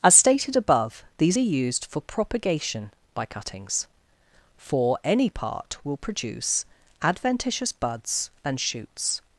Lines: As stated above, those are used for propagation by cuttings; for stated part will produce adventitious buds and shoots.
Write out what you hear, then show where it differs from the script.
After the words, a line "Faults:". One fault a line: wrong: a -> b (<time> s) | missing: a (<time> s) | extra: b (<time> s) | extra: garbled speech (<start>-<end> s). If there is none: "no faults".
As stated above, these are used for propagation by cuttings; for any part will produce adventitious buds and shoots.
Faults:
wrong: those -> these (1.2 s)
wrong: stated -> any (5.0 s)